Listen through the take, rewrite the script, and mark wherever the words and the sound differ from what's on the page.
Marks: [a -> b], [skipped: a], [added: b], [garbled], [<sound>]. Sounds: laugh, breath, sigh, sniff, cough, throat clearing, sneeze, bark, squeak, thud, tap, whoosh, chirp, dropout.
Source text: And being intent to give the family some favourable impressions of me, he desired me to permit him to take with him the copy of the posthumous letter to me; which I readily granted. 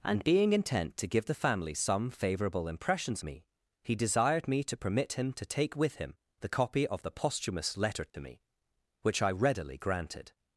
And being intent to give the family some favourable impressions [skipped: of] me, he desired me to permit him to take with him the copy of the posthumous letter to [dropout] me; which I readily granted.